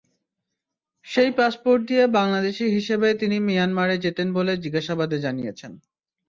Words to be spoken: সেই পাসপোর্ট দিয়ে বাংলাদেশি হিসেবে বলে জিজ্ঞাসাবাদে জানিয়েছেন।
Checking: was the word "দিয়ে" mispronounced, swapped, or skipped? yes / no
no